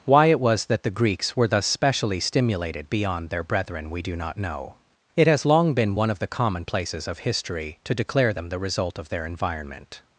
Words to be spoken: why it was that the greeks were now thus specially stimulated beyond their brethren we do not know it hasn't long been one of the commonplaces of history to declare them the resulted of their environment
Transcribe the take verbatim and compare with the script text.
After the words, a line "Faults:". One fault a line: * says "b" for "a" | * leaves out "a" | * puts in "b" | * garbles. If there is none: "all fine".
why it was that the greeks were thus specially stimulated beyond their brethren we do not know it has long been one of the commonplaces of history to declare them the result of their environment
Faults:
* leaves out "now"
* says "has" for "hasn't"
* says "result" for "resulted"